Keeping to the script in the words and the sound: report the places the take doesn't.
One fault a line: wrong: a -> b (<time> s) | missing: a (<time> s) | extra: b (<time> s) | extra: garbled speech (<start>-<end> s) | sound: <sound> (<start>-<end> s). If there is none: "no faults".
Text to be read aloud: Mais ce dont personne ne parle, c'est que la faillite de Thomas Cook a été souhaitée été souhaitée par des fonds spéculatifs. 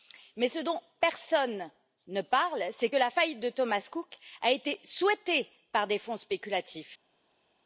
missing: été souhaitée (5.5 s)